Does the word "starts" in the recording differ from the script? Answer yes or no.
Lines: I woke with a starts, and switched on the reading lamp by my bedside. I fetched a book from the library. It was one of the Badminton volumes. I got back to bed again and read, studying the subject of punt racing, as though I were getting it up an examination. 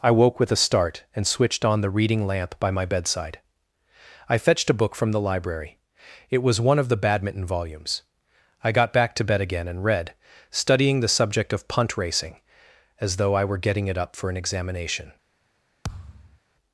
yes